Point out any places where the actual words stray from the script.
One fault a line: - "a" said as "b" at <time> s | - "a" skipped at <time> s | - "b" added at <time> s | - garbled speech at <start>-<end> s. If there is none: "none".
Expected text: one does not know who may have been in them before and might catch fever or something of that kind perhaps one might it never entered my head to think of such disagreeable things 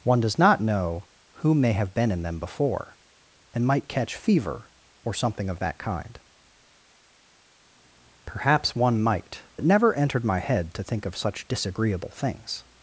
none